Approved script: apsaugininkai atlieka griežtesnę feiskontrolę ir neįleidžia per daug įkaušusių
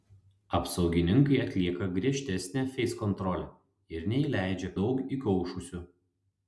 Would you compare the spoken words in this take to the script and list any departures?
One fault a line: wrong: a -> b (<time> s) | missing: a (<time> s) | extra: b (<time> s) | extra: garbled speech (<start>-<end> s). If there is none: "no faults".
missing: per (4.7 s)